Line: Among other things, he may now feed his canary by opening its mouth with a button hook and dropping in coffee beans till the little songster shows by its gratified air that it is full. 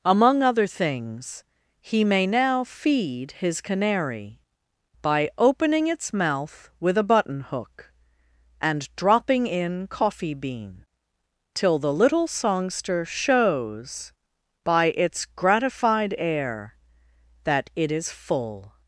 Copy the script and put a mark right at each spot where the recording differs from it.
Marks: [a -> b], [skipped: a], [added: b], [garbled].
Among other things, he may now feed his canary by opening its mouth with a button hook and dropping in coffee [beans -> bean] till the little songster shows by its gratified air that it is full.